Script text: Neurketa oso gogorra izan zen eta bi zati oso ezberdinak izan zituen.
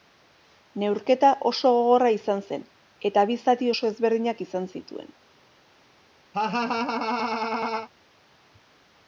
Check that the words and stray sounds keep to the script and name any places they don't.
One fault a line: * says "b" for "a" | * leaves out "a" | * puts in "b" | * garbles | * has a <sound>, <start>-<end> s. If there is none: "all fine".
* has a laugh, 6.3-7.9 s